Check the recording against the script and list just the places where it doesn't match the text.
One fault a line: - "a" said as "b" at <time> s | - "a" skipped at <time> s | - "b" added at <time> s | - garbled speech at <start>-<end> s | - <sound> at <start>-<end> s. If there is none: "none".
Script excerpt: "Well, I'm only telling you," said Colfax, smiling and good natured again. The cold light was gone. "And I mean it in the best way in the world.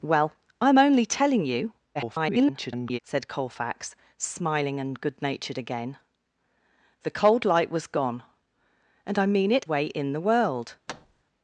- garbled speech at 1.9-3.0 s
- "in the best" skipped at 9.7 s
- thud at 10.9-11.2 s